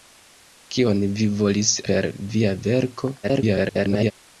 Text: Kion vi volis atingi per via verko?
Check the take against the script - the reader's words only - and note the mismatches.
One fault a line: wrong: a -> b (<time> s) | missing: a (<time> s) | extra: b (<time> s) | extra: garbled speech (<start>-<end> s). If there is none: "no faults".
missing: atingi (1.8 s)
extra: garbled speech (3.2-4.1 s)